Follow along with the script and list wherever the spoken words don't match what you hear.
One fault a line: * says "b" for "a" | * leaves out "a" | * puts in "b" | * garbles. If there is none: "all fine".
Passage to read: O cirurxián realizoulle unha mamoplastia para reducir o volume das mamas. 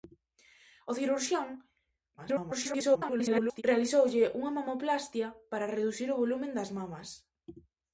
* garbles